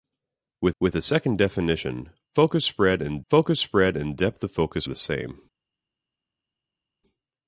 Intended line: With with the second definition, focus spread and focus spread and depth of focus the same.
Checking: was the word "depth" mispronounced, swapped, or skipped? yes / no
no